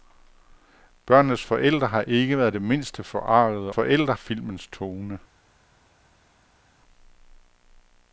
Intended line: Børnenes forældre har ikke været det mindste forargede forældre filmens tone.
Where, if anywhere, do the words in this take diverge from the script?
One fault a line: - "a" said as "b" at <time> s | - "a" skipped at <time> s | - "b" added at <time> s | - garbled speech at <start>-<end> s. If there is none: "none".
none